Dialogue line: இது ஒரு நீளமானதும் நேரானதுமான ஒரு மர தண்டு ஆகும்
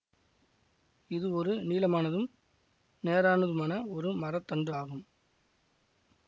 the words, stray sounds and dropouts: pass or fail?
pass